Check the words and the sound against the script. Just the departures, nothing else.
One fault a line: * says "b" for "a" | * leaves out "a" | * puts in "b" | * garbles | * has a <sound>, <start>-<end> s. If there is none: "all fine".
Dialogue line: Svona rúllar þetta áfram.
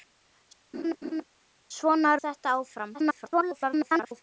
* has a laugh, 0.7-1.2 s
* leaves out "rúllar"
* garbles